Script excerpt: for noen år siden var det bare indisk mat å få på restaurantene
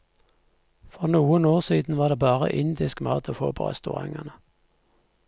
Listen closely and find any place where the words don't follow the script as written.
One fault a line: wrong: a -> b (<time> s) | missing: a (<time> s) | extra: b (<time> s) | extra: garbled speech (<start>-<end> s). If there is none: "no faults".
no faults